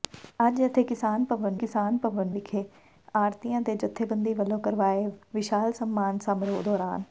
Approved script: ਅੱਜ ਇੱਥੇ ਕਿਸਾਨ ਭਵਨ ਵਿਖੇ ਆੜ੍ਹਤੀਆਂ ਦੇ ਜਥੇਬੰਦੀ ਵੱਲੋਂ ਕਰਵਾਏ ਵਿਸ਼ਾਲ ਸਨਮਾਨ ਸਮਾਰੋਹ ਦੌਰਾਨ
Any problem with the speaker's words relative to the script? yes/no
yes